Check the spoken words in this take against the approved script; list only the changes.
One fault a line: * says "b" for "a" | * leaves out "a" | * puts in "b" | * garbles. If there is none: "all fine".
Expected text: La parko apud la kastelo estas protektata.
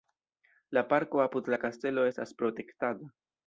all fine